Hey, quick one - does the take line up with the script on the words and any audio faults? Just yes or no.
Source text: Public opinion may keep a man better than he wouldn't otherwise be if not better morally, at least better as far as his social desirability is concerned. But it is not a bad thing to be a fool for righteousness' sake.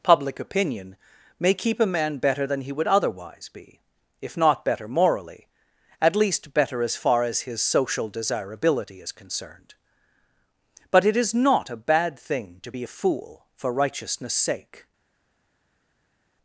no